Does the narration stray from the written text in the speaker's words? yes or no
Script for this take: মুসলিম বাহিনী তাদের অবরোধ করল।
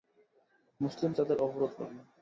yes